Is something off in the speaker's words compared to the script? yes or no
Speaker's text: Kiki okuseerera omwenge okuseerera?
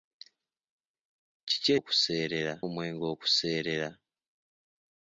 no